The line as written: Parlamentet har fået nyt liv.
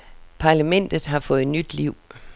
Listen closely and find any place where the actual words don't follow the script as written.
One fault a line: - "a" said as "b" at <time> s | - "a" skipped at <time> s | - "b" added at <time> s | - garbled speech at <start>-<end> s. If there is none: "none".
none